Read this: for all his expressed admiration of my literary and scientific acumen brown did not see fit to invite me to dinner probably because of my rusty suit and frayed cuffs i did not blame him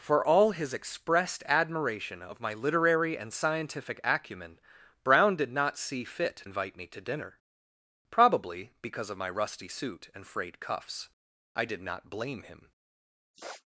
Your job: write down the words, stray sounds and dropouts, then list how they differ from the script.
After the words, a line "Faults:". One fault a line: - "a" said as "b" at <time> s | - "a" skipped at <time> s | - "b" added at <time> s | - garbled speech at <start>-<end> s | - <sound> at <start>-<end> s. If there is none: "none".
for all his expressed admiration of my literary and scientific acumen brown did not see fit invite me to dinner probably because of my rusty suit and frayed cuffs i did not blame him
Faults:
- "to" skipped at 6.5 s
- sniff at 13.3-13.7 s